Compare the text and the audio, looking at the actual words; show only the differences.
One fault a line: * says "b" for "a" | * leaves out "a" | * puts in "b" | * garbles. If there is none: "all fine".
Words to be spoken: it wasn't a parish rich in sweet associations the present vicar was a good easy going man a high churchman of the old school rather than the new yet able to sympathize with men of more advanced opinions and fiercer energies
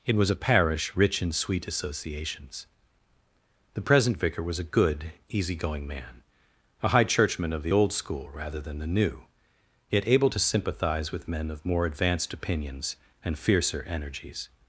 * says "was" for "wasn't"